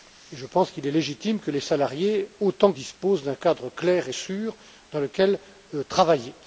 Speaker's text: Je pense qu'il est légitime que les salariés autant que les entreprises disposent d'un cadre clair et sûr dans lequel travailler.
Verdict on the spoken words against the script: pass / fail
fail